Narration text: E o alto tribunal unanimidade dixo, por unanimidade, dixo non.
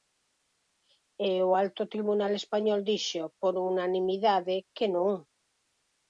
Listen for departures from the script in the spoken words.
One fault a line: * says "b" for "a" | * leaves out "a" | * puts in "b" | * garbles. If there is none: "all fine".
* says "español" for "unanimidade"
* says "que" for "dixo"